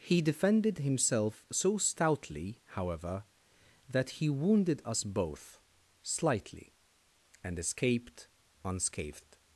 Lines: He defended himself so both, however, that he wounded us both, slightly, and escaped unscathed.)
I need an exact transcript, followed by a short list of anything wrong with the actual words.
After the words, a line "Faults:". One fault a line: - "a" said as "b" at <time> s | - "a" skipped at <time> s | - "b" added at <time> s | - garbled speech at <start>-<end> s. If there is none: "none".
He defended himself so stoutly, however, that he wounded us both, slightly, and escaped unscathed.)
Faults:
- "both" said as "stoutly" at 1.8 s